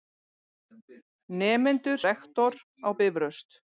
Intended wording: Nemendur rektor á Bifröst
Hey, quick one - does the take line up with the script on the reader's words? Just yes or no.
yes